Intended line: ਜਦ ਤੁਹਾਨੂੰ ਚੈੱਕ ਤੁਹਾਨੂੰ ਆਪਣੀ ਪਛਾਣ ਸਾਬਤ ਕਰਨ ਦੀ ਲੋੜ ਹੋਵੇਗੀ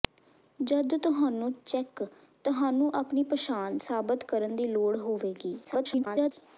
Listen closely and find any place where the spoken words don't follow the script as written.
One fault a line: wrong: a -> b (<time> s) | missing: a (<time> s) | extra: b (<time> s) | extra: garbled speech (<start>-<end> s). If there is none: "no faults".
extra: garbled speech (5.6-6.3 s)